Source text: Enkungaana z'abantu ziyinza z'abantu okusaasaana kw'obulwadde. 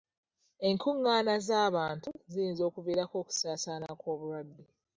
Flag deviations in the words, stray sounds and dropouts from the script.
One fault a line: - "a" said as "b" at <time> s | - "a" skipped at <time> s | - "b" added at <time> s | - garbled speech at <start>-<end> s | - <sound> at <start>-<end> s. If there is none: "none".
- "z'abantu" said as "okuviirako" at 2.7 s